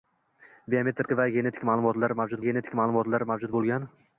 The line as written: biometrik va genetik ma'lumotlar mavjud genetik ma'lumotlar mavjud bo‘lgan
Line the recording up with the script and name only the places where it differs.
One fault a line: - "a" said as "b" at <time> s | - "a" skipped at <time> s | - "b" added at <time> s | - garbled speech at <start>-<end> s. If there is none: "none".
none